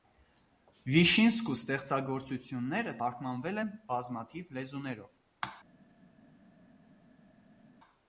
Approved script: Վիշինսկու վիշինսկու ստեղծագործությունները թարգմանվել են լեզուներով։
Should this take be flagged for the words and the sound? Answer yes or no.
yes